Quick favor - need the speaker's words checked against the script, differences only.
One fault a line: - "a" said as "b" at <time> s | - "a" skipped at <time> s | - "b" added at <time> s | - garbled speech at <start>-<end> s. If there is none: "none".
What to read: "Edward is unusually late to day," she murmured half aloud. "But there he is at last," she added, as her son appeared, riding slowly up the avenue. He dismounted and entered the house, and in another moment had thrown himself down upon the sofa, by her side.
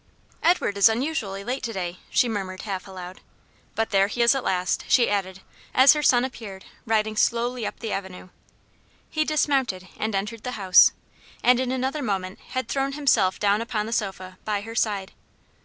none